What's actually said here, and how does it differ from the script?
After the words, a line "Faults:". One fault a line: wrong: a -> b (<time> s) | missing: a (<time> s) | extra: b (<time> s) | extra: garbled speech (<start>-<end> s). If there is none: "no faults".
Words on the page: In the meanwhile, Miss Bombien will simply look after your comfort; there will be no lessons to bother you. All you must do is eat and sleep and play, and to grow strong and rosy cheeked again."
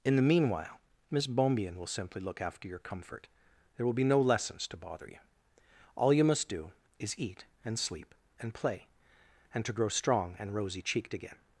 In the meanwhile, Miss Bombien will simply look after your comfort; there will be no lessons to bother you. All you must do is eat and sleep and play, and to grow strong and rosy cheeked again."
Faults:
no faults